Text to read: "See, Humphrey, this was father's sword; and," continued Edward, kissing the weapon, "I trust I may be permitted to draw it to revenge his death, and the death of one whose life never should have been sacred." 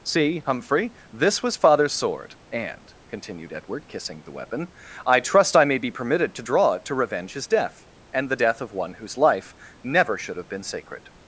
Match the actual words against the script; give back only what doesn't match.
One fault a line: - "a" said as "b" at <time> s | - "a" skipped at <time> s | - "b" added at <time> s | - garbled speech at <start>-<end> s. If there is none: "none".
none